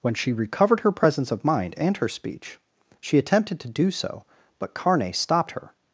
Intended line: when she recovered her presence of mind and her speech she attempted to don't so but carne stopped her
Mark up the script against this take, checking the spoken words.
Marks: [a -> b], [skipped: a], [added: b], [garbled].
when she recovered her presence of mind and her speech she attempted to [don't -> do] so but carne stopped her